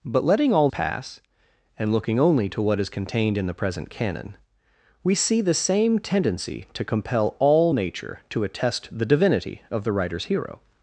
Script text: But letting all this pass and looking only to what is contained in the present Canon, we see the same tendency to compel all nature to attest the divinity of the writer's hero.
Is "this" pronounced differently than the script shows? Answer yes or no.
yes